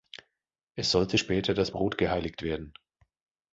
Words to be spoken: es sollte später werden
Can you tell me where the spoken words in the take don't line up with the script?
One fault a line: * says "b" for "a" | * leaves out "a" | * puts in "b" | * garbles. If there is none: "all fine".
* puts in "das brot geheiligt"